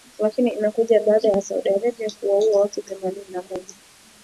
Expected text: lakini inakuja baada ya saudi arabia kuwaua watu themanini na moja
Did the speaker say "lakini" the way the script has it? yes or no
yes